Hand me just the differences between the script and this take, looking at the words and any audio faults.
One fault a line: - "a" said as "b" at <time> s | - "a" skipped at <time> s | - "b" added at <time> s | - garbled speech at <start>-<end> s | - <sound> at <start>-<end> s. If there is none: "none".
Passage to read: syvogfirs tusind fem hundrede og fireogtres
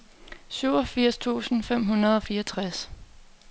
none